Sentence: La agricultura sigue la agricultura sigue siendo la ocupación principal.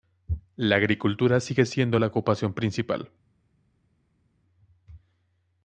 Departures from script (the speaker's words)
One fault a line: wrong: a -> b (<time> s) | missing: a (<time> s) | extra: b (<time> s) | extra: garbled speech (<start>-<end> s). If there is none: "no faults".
missing: la agricultura sigue (1.7 s)